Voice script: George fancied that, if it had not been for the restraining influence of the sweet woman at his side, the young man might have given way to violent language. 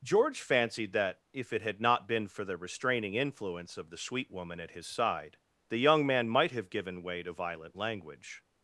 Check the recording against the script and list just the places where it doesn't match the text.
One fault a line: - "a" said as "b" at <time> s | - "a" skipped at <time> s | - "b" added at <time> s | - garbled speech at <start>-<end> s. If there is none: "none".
none